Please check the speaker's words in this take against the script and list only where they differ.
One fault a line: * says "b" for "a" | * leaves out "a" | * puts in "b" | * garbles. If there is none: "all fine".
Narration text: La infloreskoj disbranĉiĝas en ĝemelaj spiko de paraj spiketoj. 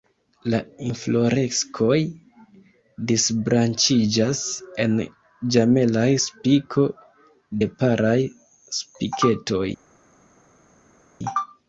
all fine